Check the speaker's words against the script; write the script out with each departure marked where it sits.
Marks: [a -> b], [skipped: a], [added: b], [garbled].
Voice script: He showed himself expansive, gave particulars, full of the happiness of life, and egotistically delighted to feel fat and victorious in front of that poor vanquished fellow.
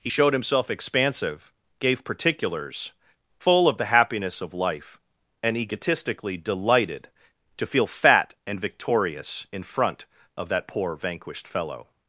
He showed himself expansive, gave particulars, full of the happiness of life, and egotistically delighted to feel fat and victorious in front of that poor vanquished fellow.